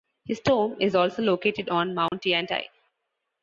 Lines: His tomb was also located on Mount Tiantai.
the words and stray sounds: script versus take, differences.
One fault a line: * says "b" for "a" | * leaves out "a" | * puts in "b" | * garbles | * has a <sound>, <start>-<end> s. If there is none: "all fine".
* says "is" for "was"
* has a dropout, 2.1-2.1 s